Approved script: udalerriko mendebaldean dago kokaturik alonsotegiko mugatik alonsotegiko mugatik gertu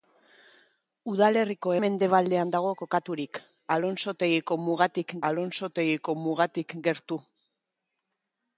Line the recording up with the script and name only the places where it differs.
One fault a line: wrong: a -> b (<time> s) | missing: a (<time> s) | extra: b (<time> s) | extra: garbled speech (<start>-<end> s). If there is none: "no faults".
no faults